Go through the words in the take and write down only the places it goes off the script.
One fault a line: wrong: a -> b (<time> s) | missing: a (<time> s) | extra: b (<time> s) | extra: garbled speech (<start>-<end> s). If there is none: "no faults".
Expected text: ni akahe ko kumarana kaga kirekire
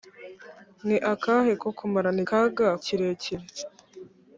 no faults